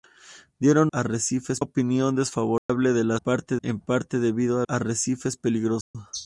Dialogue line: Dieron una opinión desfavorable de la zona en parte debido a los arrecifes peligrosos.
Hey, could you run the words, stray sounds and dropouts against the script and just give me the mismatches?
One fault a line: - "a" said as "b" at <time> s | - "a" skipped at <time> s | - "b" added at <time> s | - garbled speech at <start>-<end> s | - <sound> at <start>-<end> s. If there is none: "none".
- "una" said as "arrecifes" at 0.9 s
- dropout at 2.6-2.7 s
- "zona" said as "parte" at 3.2 s
- "los" skipped at 4.7 s
- dropout at 5.8-5.9 s